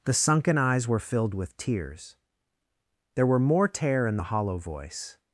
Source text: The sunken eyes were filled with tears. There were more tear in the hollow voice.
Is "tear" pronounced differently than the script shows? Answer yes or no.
no